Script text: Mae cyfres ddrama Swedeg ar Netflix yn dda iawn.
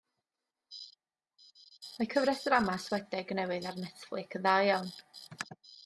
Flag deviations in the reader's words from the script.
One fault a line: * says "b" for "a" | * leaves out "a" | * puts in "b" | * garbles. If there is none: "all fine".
* puts in "newydd"